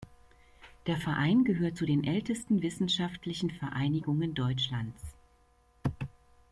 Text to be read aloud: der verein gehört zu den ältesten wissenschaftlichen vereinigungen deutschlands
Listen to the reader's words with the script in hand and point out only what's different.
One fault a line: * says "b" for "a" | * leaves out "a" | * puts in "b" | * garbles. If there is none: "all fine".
all fine